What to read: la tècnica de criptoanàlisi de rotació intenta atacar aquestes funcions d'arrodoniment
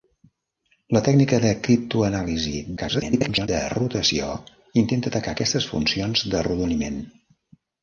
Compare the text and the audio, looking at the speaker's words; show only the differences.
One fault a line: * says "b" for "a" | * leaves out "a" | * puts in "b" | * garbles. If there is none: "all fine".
* garbles